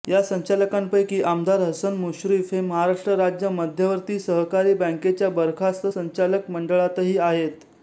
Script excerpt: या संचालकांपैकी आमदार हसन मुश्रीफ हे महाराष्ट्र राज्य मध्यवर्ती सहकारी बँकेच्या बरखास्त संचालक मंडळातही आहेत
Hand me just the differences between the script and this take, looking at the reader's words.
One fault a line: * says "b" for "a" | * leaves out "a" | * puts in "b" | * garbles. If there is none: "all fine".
all fine